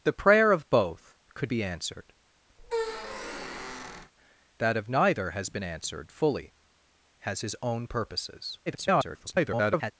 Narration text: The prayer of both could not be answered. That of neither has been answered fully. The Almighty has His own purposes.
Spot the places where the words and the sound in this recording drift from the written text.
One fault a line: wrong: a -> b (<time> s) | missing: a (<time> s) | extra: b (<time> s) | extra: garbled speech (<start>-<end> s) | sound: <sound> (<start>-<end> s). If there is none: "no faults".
missing: not (1.5 s)
sound: squeak (2.6-4.1 s)
missing: The Almighty (6.5 s)
extra: garbled speech (8.7-9.9 s)